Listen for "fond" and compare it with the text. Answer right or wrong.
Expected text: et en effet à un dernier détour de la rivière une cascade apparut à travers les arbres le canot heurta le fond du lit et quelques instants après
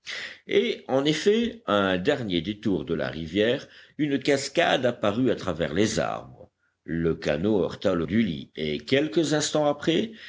wrong